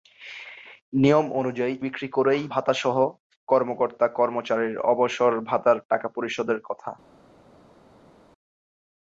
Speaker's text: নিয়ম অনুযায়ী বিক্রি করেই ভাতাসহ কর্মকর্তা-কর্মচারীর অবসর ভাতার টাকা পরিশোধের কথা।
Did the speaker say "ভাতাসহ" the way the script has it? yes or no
yes